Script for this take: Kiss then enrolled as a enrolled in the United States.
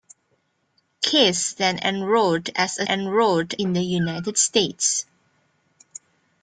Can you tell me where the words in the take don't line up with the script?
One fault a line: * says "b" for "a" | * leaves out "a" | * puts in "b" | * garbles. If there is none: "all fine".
all fine